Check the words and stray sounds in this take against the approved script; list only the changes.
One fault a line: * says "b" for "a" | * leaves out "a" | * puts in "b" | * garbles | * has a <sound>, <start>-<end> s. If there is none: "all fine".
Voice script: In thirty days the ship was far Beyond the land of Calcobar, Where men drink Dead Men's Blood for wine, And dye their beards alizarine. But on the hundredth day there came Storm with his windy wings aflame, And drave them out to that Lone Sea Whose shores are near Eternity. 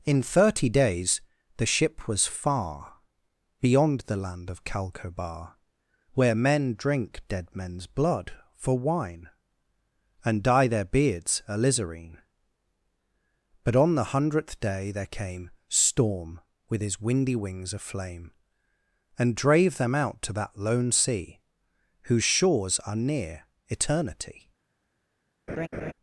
* has a laugh, 25.5-25.9 s